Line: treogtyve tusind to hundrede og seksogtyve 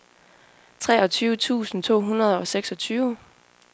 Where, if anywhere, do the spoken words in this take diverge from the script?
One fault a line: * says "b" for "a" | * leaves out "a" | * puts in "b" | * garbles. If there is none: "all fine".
all fine